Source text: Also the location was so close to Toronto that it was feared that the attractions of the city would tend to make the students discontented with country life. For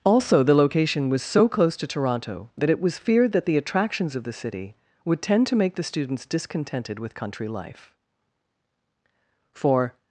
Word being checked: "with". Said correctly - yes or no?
yes